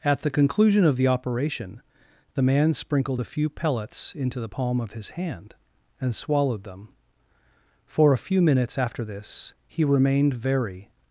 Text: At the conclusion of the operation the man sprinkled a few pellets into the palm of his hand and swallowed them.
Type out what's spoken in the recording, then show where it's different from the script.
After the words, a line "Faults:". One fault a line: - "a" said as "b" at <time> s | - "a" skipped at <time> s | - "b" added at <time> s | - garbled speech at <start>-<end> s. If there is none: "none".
At the conclusion of the operation the man sprinkled a few pellets into the palm of his hand and swallowed them. For a few minutes after this he remained very
Faults:
- "For a few minutes after this he remained very" added at 7.8 s